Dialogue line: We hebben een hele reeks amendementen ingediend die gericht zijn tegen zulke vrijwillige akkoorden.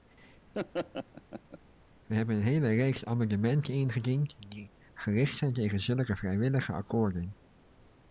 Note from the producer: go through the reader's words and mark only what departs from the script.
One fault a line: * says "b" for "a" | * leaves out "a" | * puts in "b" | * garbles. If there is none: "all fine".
all fine